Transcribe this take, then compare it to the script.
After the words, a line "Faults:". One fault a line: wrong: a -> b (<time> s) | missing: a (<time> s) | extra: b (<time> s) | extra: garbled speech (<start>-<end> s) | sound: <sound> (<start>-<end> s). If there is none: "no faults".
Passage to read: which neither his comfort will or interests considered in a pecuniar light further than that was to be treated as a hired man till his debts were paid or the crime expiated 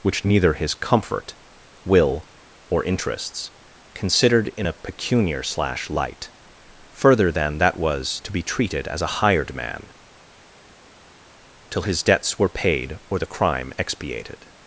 which neither his comfort will or interests considered in a pecuniar slash light further than that was to be treated as a hired man till his debts were paid or the crime expiated
Faults:
extra: slash (5.4 s)